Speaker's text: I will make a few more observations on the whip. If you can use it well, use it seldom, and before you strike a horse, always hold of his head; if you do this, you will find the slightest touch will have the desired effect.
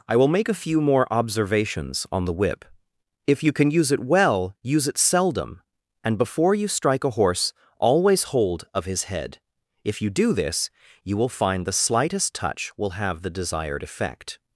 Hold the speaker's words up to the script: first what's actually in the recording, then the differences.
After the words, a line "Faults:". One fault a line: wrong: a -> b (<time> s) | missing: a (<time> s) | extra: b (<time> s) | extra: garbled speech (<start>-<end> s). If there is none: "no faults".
I will make a few more observations on the whip. If you can use it well, use it seldom, and before you strike a horse, always hold of his head; if you do this, you will find the slightest touch will have the desired effect.
Faults:
no faults